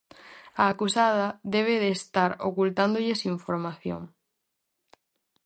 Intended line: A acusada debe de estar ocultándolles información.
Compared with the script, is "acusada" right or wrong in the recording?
right